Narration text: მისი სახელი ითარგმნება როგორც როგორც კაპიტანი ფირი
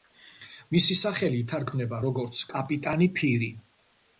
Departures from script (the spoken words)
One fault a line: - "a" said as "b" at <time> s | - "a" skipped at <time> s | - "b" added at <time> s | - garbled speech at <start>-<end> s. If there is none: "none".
- "როგორც" skipped at 2.4 s